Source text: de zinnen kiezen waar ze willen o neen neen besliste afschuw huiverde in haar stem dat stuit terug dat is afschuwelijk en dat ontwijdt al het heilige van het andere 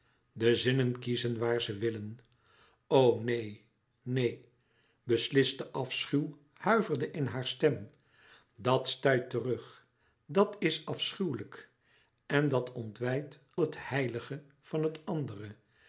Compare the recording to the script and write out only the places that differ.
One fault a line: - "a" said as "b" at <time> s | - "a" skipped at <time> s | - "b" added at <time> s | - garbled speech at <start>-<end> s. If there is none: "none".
- "al" skipped at 13.4 s